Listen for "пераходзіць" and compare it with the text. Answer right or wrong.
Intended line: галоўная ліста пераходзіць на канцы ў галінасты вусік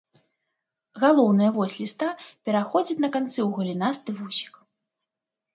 right